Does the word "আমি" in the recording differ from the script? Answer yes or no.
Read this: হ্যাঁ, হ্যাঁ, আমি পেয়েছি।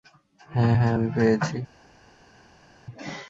no